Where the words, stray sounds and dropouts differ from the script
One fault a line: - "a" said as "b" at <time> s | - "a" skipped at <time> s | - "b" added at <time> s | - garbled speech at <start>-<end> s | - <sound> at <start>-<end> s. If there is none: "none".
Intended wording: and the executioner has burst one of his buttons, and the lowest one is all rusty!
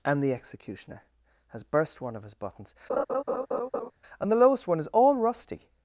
- laugh at 2.9-3.9 s